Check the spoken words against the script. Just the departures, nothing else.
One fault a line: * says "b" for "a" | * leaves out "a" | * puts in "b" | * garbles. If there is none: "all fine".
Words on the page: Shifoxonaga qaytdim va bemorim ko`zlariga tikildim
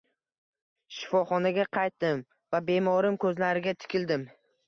all fine